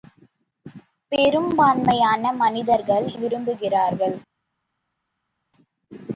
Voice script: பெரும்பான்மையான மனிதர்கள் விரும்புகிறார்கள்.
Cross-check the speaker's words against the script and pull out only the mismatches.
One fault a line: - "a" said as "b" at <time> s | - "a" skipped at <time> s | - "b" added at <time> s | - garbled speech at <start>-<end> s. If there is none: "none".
none